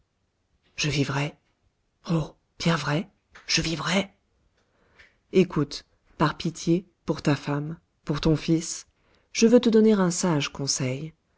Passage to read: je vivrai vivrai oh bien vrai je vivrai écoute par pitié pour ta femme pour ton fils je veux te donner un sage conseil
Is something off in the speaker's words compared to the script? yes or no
yes